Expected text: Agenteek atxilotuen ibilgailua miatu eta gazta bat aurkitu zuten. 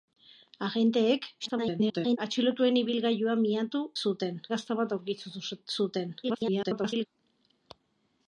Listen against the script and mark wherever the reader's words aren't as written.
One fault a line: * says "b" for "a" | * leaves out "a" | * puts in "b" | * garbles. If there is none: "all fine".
* garbles
* says "zuten" for "eta"
* garbles